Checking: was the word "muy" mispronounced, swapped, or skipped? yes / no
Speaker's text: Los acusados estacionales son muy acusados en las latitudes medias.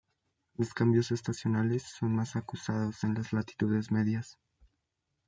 yes